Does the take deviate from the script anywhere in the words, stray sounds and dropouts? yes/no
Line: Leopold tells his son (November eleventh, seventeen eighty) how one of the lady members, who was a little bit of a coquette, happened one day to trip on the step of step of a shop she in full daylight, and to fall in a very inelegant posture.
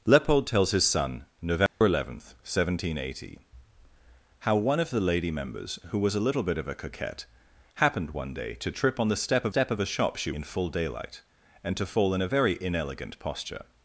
yes